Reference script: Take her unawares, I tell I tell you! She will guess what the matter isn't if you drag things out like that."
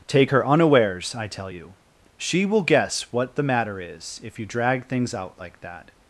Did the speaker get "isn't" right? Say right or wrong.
wrong